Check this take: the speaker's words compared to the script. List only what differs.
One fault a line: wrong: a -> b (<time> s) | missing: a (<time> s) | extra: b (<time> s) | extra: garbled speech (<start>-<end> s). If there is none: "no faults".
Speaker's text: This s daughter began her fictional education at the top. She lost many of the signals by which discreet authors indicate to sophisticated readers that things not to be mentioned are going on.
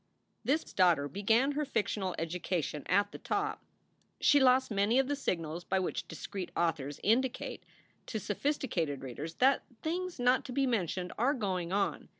no faults